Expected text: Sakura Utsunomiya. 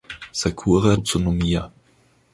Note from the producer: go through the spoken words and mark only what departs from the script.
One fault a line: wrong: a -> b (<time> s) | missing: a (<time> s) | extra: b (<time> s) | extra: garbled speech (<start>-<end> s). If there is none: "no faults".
no faults